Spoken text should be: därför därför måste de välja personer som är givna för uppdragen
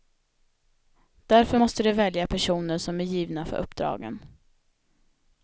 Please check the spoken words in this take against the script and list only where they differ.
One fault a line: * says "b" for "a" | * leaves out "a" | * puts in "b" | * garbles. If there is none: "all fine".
* leaves out "därför"